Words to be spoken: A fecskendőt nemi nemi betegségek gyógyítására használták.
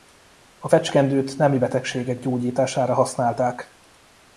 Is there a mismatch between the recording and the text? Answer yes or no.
yes